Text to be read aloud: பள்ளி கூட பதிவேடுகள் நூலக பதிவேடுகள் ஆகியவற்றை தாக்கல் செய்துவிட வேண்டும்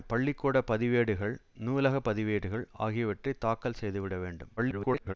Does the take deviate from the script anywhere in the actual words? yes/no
yes